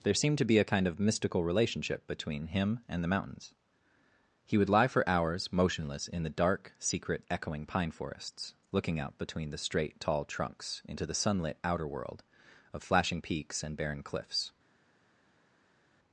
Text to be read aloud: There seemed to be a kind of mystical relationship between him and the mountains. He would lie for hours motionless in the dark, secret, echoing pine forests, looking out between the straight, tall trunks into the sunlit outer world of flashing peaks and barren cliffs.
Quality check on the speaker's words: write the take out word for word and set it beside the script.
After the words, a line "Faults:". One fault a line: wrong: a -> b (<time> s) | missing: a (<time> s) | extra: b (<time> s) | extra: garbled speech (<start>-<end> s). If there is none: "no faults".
There seemed to be a kind of mystical relationship between him and the mountains. He would lie for hours motionless in the dark, secret, echoing pine forests, looking out between the straight, tall trunks into the sunlit outer world of flashing peaks and barren cliffs.
Faults:
no faults